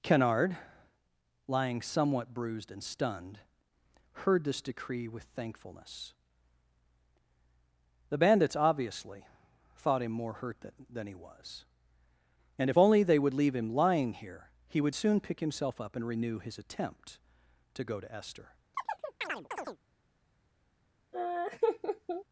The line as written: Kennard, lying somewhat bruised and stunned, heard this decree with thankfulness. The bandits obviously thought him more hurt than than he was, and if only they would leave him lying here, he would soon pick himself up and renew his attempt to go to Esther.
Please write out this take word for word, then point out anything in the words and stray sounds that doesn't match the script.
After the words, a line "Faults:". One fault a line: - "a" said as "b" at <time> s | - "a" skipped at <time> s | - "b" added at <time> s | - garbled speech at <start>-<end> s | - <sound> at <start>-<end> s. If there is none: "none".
Kennard, lying somewhat bruised and stunned, heard this decree with thankfulness. The bandits obviously thought him more hurt than than he was, and if only they would leave him lying here, he would soon pick himself up and renew his attempt to go to Esther.
Faults:
- chirp at 18.7-19.8 s
- laugh at 21.1-22.2 s